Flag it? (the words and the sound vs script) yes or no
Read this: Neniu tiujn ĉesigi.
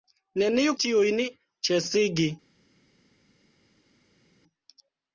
no